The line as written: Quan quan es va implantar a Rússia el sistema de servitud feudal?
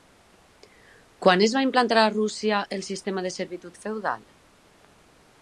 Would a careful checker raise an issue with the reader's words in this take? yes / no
yes